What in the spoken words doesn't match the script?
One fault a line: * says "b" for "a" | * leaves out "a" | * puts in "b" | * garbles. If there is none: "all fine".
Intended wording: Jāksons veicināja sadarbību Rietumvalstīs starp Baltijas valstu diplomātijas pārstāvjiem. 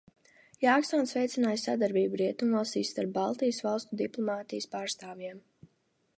all fine